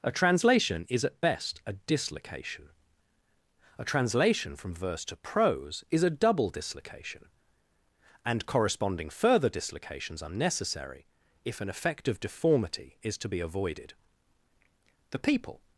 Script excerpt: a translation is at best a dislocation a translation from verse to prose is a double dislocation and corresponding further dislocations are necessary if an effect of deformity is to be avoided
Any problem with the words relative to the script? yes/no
yes